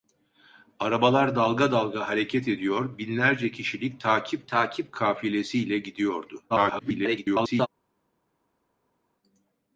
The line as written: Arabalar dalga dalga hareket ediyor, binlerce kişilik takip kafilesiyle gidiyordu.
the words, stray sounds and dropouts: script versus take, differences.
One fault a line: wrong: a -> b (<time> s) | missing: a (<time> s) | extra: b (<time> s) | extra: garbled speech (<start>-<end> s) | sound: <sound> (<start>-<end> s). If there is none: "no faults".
extra: takip (4.5 s)
extra: garbled speech (6.5-7.7 s)